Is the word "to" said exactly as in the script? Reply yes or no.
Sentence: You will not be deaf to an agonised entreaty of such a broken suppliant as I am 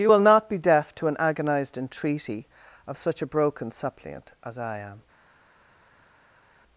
yes